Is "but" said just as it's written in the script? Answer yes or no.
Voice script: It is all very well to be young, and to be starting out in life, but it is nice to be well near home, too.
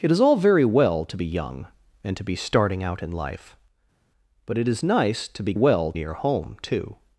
yes